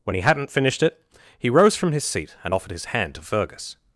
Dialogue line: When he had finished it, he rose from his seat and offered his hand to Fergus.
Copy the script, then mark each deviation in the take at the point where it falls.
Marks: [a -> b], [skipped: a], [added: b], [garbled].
When he [had -> hadn't] finished it, he rose from his seat and offered his hand to Fergus.